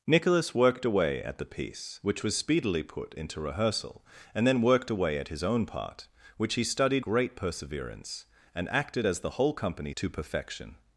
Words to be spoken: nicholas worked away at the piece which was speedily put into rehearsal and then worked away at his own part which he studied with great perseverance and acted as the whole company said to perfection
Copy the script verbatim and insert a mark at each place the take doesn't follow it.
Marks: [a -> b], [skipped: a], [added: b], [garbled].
nicholas worked away at the piece which was speedily put into rehearsal and then worked away at his own part which he studied [skipped: with] great perseverance and acted as the whole company [skipped: said] to perfection